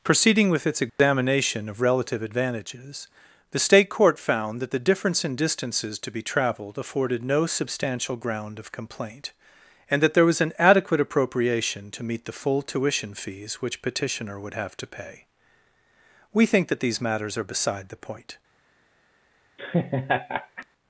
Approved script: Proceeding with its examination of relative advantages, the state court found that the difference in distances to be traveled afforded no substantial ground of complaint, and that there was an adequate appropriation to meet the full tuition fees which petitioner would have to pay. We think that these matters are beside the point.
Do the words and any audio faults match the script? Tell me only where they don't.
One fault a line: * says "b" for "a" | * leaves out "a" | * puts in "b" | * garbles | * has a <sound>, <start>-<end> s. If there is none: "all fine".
* has a dropout, 0.9-1.0 s
* has a laugh, 19.6-20.7 s